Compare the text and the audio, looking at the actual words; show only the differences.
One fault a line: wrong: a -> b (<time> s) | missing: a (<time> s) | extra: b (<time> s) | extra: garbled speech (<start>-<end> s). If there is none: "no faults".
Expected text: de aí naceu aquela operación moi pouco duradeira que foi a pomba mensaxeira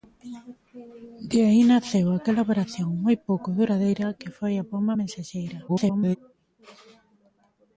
extra: garbled speech (5.7-6.2 s)